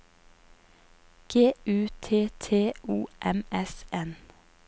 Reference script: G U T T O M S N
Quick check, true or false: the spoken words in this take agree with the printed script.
true